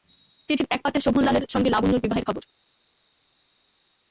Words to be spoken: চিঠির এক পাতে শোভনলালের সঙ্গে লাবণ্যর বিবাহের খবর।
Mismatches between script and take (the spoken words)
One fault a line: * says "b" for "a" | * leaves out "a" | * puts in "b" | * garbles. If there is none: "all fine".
all fine